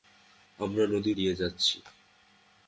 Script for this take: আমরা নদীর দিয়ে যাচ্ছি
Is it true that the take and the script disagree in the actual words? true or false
false